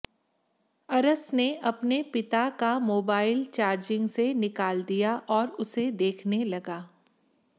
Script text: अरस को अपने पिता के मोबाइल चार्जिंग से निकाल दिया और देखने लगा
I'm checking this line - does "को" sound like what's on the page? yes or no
no